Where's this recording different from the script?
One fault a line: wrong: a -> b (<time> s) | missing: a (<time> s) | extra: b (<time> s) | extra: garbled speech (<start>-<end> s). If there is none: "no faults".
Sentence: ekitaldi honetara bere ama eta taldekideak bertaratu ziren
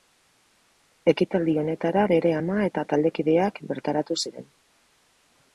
no faults